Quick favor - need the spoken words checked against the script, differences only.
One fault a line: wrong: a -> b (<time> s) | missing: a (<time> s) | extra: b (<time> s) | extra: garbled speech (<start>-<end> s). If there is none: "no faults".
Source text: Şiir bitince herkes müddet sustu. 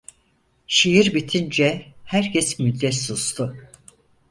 no faults